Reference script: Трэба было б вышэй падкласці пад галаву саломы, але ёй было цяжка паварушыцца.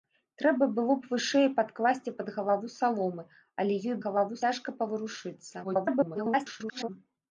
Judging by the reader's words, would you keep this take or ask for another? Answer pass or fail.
fail